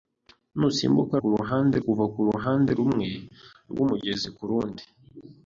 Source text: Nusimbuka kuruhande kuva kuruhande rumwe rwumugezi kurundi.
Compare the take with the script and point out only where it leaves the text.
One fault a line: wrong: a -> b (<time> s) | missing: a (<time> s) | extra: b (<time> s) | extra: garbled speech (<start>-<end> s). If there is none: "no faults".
no faults